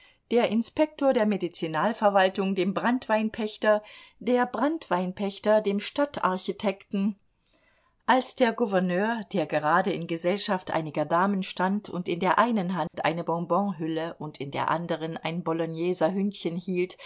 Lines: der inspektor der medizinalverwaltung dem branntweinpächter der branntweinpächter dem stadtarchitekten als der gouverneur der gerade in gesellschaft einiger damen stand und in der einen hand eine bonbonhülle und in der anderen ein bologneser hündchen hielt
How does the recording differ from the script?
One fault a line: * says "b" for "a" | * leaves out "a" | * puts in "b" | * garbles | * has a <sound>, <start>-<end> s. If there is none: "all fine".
* has a dropout, 12.9-12.9 s